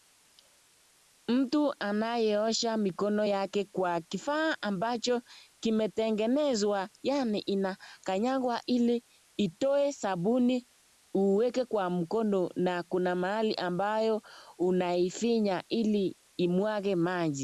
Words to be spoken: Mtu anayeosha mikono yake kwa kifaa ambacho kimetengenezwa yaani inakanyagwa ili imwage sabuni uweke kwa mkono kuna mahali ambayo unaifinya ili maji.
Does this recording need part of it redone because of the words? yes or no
yes